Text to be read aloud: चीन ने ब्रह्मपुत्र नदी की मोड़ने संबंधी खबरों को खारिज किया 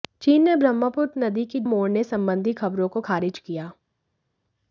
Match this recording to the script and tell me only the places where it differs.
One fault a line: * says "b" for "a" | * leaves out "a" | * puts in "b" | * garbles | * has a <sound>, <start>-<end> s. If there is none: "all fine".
all fine